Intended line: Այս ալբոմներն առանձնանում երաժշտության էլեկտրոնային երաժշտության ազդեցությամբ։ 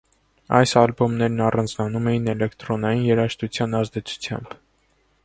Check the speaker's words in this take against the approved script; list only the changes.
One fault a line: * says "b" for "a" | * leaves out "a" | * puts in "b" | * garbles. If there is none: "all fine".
* says "էին" for "երաժշտության"